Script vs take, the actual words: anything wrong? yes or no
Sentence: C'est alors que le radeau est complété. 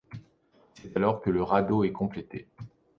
no